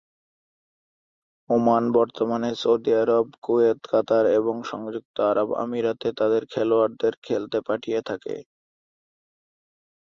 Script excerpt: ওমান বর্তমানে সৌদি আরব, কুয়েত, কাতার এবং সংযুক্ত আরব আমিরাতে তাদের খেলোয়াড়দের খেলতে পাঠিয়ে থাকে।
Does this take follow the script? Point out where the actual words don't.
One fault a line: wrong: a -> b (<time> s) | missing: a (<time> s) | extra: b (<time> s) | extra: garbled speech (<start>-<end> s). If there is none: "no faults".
no faults